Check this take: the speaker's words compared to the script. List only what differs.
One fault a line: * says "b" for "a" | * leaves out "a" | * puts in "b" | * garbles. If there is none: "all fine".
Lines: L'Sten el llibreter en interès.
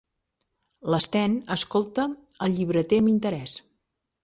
* puts in "escolta"
* says "amb" for "en"